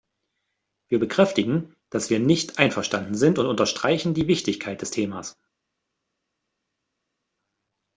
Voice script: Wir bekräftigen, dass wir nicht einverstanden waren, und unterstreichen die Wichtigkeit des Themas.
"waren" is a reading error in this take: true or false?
true